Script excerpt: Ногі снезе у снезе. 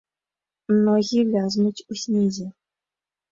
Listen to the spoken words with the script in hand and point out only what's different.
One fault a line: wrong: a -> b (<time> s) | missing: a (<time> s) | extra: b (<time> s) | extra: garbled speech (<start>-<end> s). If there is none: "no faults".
wrong: снезе -> вязнуць (1.3 s)